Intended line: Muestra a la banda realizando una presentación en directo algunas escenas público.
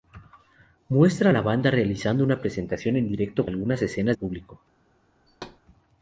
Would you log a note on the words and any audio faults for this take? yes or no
yes